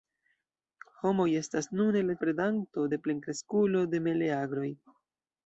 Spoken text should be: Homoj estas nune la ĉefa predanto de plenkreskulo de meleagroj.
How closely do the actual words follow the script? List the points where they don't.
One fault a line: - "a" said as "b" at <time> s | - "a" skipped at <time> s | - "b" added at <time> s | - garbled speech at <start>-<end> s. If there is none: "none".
- "ĉefa" skipped at 2.2 s